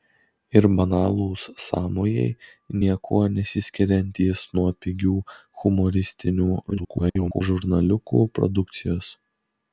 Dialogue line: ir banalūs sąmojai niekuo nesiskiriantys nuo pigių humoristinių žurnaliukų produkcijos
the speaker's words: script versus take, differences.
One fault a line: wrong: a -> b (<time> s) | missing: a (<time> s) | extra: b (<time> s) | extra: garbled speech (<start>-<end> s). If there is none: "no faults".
extra: garbled speech (6.7-7.4 s)